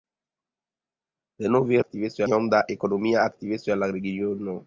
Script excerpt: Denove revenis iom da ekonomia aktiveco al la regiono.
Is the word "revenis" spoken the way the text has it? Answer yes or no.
no